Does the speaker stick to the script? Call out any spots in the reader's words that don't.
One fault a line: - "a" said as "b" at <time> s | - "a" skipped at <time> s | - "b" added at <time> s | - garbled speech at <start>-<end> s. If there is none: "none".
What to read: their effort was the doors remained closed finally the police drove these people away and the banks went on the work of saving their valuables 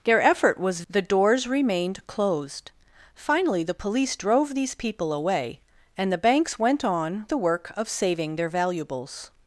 none